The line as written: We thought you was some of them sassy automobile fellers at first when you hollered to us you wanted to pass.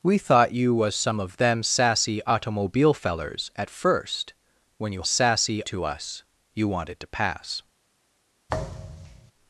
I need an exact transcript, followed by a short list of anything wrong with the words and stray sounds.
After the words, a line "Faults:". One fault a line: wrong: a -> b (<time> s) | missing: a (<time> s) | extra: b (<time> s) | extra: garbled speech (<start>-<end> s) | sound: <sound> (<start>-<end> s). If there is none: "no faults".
We thought you was some of them sassy automobile fellers at first when you sassy to us you wanted to pass.
Faults:
wrong: hollered -> sassy (5.0 s)
sound: thud (8.5-9.3 s)